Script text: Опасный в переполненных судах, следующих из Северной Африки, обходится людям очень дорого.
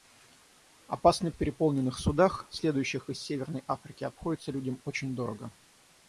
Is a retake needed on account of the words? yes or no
no